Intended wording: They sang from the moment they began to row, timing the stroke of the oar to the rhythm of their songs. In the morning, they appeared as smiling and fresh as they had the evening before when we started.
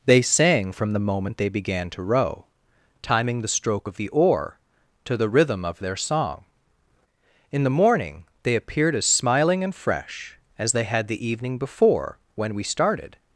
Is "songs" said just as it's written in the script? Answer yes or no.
no